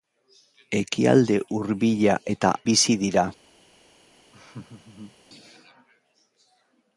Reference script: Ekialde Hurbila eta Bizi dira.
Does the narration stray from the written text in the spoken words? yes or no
no